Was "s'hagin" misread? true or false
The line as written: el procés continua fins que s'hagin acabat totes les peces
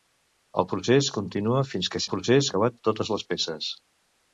true